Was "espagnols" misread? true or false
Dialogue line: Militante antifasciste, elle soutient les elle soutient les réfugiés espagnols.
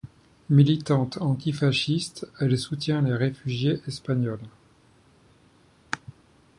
false